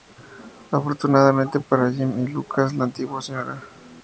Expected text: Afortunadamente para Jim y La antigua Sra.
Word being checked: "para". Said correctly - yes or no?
yes